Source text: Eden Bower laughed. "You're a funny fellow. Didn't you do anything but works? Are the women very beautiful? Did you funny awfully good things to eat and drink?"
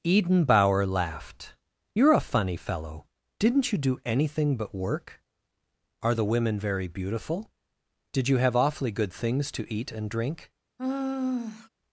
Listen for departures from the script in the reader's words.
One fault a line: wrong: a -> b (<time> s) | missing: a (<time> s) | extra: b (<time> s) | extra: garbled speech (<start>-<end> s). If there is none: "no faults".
wrong: works -> work (4.7 s)
wrong: funny -> have (8.4 s)